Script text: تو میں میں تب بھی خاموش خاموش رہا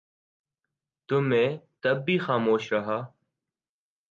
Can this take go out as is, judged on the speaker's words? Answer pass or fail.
fail